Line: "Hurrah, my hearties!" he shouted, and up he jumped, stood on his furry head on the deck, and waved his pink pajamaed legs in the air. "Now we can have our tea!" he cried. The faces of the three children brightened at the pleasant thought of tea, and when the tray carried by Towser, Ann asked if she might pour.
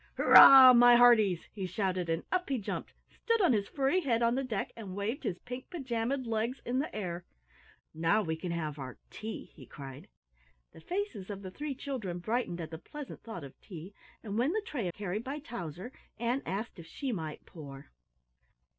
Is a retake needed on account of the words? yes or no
no